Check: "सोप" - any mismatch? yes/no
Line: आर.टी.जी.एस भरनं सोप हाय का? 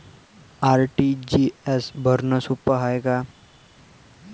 no